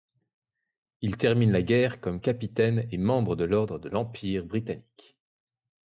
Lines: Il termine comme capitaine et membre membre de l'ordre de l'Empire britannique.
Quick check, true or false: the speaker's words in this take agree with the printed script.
false